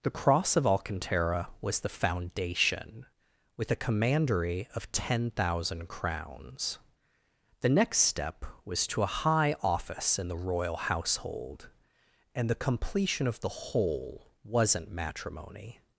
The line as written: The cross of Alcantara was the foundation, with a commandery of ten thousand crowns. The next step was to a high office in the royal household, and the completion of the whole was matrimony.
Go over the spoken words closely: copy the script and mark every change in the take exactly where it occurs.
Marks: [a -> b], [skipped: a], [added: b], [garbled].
The cross of Alcantara was the foundation, with a commandery of ten thousand crowns. The next step was to a high office in the royal household, and the completion of the whole [was -> wasn't] matrimony.